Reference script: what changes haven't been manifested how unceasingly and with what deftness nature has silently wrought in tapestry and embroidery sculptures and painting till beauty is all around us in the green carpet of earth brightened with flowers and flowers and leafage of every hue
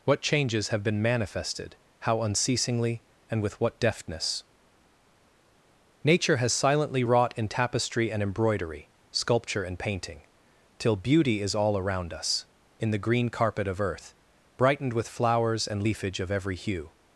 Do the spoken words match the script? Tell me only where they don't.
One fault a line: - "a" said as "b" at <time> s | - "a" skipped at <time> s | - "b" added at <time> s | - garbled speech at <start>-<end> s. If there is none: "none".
- "haven't" said as "have" at 0.7 s
- "sculptures" said as "sculpture" at 9.1 s
- "flowers and" skipped at 15.8 s